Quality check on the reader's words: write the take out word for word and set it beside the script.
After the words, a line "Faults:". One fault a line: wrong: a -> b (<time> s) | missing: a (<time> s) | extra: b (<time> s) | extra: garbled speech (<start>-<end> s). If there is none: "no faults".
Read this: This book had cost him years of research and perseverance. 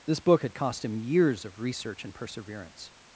This book had cost him years of research and perseverance.
Faults:
no faults